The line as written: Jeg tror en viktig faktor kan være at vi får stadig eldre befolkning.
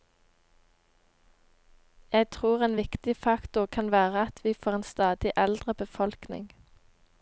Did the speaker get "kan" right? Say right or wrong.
right